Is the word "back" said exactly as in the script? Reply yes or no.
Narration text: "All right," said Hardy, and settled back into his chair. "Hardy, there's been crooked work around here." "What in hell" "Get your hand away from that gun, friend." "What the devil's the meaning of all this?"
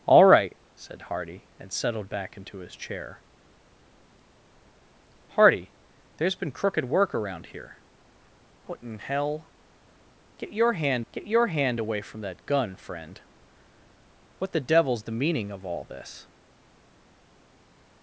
yes